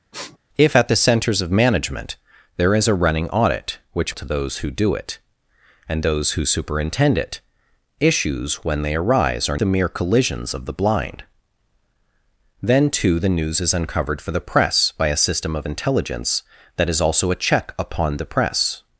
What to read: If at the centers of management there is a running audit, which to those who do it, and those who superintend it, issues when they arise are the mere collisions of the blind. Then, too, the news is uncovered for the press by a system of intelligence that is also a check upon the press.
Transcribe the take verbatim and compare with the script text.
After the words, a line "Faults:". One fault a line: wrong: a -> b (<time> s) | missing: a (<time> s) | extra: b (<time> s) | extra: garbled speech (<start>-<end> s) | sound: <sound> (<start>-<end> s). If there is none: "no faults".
If at the centers of management there is a running audit, which to those who do it, and those who superintend it, issues when they arise are the mere collisions of the blind. Then, too, the news is uncovered for the press by a system of intelligence that is also a check upon the press.
Faults:
sound: sniff (0.1-0.4 s)